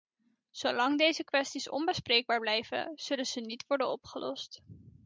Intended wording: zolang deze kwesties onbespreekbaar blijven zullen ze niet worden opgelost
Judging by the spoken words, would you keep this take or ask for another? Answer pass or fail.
pass